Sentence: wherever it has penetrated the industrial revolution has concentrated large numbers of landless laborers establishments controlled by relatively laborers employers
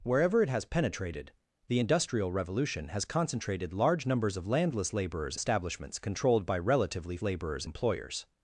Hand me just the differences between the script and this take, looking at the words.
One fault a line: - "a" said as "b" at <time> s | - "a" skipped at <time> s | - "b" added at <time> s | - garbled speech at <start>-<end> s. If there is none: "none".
none